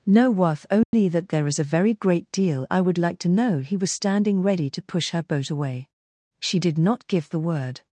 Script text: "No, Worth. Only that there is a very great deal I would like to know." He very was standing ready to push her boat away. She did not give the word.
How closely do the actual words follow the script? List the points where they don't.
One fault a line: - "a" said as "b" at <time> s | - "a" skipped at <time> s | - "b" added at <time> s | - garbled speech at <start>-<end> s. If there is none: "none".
- "very" skipped at 3.8 s